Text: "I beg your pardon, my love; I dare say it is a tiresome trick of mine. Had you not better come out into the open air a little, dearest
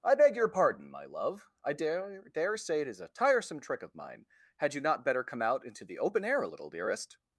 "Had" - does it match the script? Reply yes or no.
yes